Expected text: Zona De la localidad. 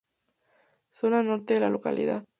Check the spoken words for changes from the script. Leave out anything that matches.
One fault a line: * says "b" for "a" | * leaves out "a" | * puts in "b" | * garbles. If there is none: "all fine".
* puts in "Norte"